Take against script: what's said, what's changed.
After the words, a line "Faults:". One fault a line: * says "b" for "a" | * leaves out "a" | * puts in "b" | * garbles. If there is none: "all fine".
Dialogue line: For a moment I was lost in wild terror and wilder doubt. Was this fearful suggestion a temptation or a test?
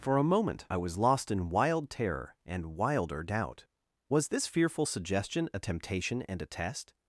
For a moment I was lost in wild terror and wilder doubt. Was this fearful suggestion a temptation and a test?
Faults:
* says "and" for "or"